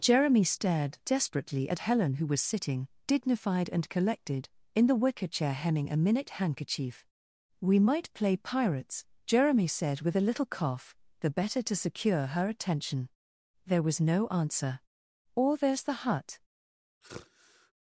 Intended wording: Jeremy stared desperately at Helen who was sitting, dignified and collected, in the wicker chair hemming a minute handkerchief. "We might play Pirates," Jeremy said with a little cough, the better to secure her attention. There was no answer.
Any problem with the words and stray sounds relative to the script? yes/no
yes